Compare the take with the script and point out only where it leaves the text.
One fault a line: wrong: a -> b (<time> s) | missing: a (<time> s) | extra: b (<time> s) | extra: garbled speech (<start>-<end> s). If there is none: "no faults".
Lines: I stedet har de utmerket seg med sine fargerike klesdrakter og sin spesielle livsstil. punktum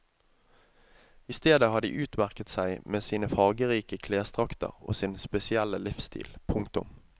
no faults